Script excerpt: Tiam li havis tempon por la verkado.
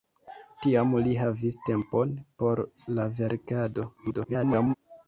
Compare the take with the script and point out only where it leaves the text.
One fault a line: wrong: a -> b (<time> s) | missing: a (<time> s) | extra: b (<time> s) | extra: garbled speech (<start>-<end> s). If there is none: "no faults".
extra: garbled speech (4.0-4.7 s)